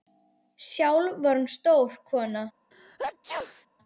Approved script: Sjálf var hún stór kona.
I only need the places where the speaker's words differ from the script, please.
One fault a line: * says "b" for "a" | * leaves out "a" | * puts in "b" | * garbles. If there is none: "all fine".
all fine